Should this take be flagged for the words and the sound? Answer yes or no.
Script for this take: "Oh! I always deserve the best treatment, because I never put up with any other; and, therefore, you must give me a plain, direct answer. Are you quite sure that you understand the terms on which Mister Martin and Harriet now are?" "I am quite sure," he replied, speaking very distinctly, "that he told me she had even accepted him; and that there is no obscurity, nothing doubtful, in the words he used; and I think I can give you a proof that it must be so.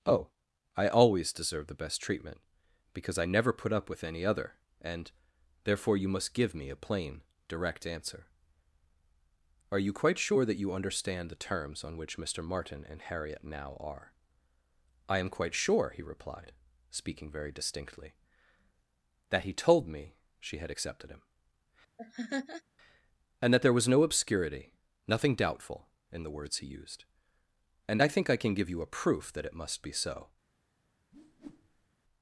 yes